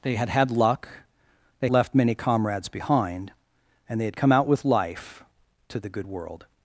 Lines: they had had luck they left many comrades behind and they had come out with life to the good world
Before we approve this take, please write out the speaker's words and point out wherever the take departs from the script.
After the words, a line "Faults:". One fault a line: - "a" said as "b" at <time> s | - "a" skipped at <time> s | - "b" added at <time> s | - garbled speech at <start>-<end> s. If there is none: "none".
they had had luck they left many comrades behind and they had come out with life to the good world
Faults:
none